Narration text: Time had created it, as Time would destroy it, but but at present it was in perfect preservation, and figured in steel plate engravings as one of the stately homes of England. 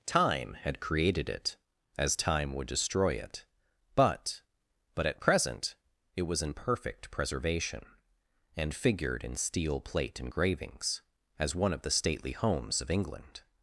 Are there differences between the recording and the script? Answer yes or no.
no